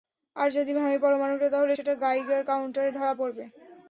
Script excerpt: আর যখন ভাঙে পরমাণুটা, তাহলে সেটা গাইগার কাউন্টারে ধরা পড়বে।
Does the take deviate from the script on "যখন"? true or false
true